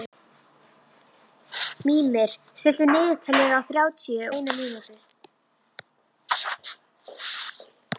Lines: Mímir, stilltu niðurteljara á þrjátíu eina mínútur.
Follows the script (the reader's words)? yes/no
yes